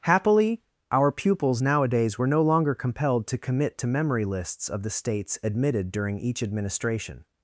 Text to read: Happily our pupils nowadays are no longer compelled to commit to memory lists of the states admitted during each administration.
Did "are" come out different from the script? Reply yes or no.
yes